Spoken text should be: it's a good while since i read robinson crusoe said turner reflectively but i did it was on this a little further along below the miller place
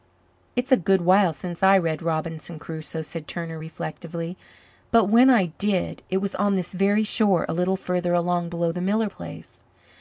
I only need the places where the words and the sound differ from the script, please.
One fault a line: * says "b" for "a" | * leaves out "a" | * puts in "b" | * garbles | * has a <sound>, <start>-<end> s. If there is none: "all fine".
* puts in "when"
* puts in "very shore"